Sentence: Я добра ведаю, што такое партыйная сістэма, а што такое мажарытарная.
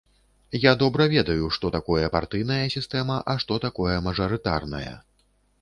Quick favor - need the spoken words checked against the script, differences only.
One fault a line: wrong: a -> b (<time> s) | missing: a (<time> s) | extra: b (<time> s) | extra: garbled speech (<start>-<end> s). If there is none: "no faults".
no faults